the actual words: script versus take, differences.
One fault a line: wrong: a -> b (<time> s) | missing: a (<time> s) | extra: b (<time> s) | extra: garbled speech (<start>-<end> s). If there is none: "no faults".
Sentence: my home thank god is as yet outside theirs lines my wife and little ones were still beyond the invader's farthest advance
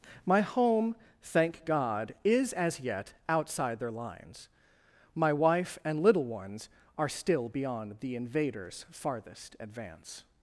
wrong: theirs -> their (3.8 s)
wrong: were -> are (7.0 s)